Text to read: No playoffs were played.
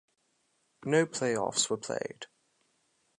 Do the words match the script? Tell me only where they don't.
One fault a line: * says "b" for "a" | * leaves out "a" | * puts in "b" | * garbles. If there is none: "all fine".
all fine